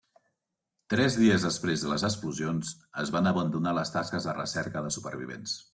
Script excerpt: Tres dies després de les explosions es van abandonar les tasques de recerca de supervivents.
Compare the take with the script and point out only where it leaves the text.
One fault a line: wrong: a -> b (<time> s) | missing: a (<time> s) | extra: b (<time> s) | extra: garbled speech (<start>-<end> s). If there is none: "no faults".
no faults